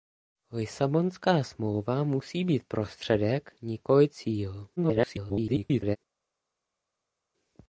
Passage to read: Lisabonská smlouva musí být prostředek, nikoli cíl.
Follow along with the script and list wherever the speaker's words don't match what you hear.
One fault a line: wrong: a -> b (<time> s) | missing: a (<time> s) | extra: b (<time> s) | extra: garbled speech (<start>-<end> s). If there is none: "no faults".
extra: garbled speech (4.8-6.0 s)